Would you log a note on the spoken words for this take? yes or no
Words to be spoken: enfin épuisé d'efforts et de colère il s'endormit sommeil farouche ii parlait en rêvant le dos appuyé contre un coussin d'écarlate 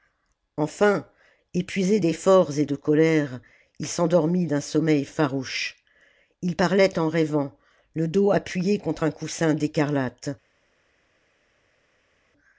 yes